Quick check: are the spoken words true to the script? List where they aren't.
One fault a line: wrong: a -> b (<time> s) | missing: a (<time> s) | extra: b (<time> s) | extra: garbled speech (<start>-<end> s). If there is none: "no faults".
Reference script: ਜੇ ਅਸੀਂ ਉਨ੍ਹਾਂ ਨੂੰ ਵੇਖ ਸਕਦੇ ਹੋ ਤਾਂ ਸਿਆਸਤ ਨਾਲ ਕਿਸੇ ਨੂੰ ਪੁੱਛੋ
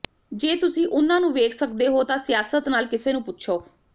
wrong: ਅਸੀਂ -> ਤੁਸੀਂ (0.6 s)